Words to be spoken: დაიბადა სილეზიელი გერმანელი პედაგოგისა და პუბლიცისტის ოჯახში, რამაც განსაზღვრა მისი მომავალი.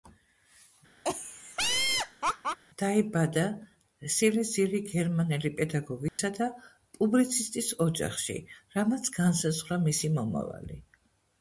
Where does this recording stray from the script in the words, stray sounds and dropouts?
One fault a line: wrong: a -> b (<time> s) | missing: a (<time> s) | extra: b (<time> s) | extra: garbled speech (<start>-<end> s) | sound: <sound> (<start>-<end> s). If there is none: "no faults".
sound: laugh (1.0-2.6 s)
sound: dropout (6.1-6.2 s)